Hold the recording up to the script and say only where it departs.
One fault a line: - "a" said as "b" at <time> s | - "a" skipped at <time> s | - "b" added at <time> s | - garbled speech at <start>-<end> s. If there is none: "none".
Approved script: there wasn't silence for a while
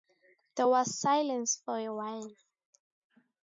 - "wasn't" said as "was" at 0.7 s